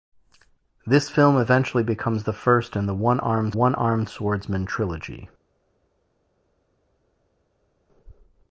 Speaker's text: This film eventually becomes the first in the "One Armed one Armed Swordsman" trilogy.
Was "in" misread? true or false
false